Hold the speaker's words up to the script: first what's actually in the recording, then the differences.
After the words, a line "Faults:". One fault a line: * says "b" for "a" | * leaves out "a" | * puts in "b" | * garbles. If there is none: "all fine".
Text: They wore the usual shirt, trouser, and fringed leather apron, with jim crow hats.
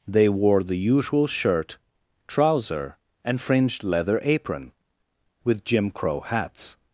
They wore the usual shirt, trouser, and fringed leather apron, with jim crow hats.
Faults:
all fine